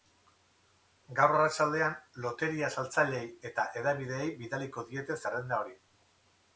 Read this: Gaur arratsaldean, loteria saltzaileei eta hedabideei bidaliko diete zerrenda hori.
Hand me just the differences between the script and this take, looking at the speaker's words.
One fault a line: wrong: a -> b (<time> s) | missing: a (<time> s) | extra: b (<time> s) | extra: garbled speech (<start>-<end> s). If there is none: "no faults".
no faults